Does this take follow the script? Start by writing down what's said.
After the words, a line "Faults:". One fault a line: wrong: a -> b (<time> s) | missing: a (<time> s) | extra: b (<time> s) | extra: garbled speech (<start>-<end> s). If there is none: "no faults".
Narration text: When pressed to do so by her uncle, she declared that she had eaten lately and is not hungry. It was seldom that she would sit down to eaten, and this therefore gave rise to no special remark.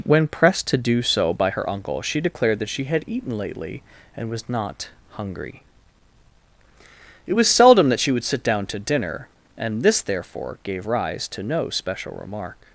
When pressed to do so by her uncle, she declared that she had eaten lately and was not hungry. It was seldom that she would sit down to dinner, and this therefore gave rise to no special remark.
Faults:
wrong: is -> was (4.3 s)
wrong: eaten -> dinner (8.8 s)